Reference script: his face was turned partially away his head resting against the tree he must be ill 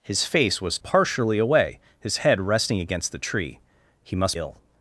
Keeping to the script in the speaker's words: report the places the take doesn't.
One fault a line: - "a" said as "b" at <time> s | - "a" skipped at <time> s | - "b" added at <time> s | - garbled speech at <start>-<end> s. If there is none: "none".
- "turned" skipped at 0.8 s
- "be" skipped at 4.4 s